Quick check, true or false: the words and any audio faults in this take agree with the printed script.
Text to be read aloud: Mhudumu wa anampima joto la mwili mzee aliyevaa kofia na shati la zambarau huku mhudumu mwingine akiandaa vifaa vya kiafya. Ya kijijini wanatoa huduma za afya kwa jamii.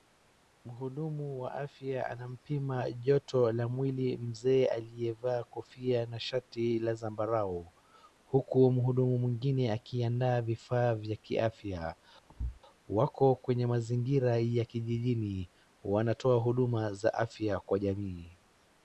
false